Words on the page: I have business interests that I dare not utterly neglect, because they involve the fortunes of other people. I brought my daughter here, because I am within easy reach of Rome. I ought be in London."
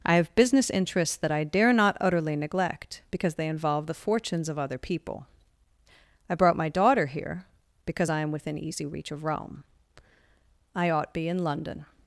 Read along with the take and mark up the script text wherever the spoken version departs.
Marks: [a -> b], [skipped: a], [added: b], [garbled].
I have business interests that I dare not utterly neglect, because they involve the fortunes of other people. I brought my daughter here, because I am within easy reach of Rome. I ought be in London."